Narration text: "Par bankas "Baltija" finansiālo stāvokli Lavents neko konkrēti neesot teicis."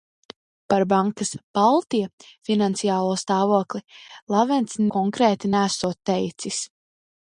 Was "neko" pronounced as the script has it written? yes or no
no